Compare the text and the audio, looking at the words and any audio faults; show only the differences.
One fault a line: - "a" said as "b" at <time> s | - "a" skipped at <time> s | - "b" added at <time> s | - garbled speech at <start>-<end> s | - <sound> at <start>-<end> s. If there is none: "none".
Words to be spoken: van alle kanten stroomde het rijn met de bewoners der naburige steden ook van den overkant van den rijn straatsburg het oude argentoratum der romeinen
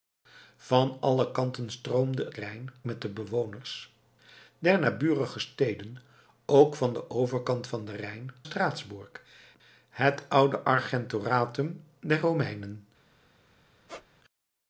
- squeak at 13.9-14.1 s